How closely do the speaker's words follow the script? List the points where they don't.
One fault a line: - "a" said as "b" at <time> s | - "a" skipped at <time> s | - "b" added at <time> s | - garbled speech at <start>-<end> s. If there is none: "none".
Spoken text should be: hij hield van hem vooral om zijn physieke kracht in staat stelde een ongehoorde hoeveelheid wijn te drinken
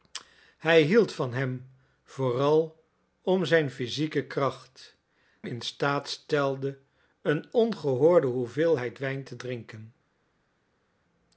none